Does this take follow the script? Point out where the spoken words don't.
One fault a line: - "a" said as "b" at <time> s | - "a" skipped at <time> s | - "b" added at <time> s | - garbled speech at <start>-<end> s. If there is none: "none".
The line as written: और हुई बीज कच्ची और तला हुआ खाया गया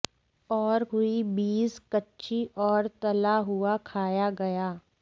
none